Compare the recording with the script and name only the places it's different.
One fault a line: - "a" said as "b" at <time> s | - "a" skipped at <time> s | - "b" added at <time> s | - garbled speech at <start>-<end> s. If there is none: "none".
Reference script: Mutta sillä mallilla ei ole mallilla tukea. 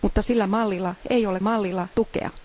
none